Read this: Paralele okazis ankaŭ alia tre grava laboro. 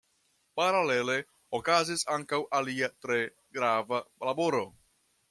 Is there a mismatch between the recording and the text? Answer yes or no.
no